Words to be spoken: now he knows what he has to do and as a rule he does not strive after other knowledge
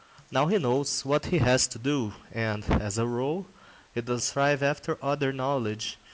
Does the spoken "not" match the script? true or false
false